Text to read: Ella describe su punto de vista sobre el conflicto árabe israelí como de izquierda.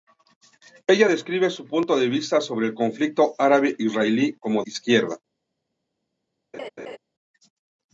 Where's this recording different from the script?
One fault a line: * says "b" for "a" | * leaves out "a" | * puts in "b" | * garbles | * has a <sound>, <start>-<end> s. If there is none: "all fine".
* leaves out "de"
* has a laugh, 6.5-7.0 s